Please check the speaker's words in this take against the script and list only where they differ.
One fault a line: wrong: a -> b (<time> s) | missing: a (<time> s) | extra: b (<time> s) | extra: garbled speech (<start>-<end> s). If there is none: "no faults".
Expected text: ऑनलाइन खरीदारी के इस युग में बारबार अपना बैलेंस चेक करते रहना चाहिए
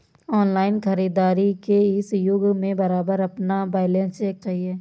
missing: करते रहना (4.4 s)